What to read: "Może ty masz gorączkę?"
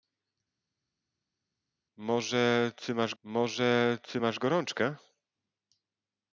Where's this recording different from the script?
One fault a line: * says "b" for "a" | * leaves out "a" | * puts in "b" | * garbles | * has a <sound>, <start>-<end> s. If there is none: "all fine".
* puts in "może ty masz"